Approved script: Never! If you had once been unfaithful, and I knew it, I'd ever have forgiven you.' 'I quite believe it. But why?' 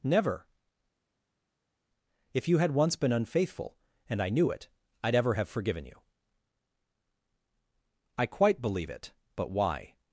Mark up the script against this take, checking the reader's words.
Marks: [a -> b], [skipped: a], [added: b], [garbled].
Never! If you had once been unfaithful, and I knew it, I'd ever have forgiven you.' 'I quite believe it. But why?'